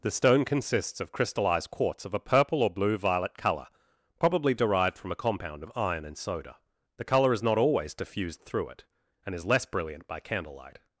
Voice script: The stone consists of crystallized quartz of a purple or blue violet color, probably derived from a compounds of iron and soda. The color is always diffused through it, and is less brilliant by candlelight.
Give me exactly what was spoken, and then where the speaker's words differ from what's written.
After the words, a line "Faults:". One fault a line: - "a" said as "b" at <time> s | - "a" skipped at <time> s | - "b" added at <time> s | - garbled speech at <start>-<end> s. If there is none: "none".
The stone consists of crystallized quartz of a purple or blue violet color, probably derived from a compound of iron and soda. The color is not always diffused through it, and is less brilliant by candlelight.
Faults:
- "compounds" said as "compound" at 5.2 s
- "not" added at 7.4 s